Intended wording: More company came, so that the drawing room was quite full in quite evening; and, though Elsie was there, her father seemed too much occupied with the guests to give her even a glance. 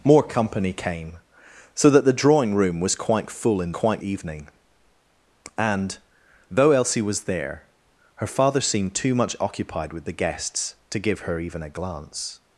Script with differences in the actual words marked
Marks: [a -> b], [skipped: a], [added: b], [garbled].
More company came, so that the drawing room was quite full in quite evening; and, though Elsie was there, her father seemed too much occupied with the guests to give her even a glance.